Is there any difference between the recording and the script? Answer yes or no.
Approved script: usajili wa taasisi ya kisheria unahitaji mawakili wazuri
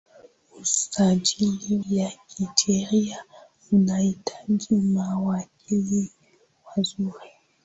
yes